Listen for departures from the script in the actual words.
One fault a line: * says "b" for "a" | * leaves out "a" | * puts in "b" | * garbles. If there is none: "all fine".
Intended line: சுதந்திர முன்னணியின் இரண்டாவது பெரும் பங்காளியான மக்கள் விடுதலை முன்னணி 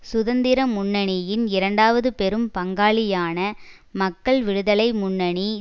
all fine